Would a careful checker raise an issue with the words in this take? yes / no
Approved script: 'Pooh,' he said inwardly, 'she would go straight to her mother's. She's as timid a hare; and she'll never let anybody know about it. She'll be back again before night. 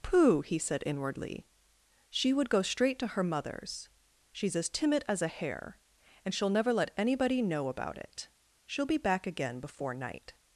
yes